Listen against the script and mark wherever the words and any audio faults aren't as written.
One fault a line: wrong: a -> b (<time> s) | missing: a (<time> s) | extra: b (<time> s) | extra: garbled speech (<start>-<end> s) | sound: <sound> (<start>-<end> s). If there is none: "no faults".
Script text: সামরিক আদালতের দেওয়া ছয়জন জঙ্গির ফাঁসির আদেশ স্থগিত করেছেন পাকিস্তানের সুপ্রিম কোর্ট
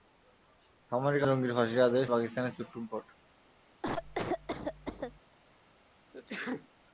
missing: আদালতের দেওয়া ছয়জন (1.2 s)
missing: স্থগিত করেছেন (2.1 s)
sound: cough (3.8-5.2 s)
sound: sneeze (6.1-6.7 s)